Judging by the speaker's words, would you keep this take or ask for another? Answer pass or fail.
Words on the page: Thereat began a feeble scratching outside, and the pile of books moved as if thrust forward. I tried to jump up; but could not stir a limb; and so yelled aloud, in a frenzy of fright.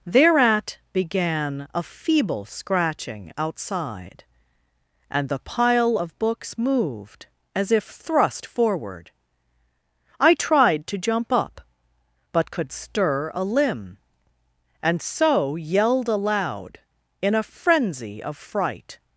fail